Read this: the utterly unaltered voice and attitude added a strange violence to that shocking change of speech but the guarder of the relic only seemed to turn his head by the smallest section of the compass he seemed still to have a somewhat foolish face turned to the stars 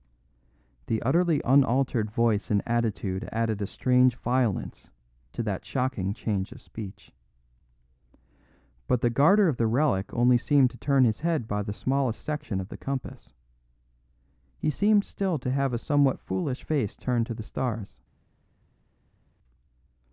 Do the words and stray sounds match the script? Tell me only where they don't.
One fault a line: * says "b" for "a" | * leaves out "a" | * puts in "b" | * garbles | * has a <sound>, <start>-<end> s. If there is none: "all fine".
all fine